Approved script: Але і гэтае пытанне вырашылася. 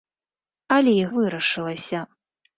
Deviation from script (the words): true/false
true